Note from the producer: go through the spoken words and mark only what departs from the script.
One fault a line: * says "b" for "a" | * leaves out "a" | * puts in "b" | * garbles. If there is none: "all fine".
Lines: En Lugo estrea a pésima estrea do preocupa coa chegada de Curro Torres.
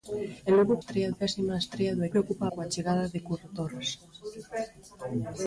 all fine